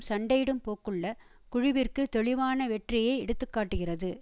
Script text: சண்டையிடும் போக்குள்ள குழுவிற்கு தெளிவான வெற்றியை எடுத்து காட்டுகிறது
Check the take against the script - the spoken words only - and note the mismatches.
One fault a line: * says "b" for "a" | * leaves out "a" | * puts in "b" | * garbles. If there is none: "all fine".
all fine